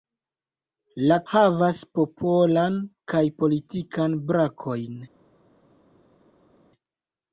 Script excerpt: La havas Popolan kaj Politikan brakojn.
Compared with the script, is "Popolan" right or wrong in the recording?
right